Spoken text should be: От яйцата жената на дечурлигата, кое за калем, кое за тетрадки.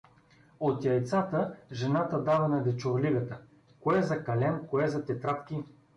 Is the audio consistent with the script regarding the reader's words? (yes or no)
no